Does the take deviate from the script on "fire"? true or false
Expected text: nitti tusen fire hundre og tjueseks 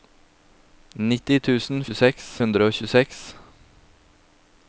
true